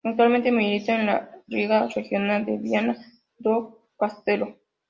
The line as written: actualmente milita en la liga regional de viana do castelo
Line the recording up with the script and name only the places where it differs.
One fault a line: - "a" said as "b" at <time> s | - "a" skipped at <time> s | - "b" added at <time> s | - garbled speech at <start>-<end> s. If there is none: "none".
none